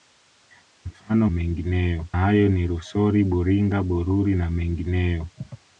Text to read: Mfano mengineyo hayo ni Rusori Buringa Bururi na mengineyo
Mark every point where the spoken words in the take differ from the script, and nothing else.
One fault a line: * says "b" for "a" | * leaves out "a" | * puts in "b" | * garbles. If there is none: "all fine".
all fine